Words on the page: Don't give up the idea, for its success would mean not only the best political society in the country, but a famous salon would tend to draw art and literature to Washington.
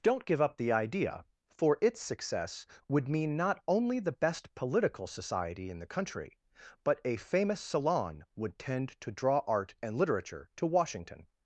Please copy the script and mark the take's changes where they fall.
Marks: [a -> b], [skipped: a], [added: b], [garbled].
Don't give up the idea, for its success would mean not only the best political society in the country, but a famous salon would tend to draw art and literature to Washington.